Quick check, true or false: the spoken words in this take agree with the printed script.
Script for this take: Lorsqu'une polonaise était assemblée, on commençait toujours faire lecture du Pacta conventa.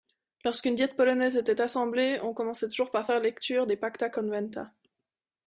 false